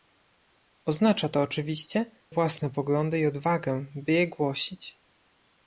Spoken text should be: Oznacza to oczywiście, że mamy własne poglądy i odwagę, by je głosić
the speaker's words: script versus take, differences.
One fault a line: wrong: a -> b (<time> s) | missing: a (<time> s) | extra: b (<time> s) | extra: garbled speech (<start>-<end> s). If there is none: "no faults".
missing: że mamy (2.0 s)